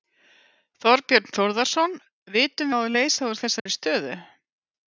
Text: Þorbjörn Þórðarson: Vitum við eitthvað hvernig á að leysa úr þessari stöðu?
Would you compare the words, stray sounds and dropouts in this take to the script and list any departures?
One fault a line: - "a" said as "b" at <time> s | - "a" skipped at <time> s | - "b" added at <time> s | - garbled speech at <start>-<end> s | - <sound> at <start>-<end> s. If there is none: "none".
- "við eitthvað hvernig" skipped at 2.7 s
- dropout at 3.6-3.7 s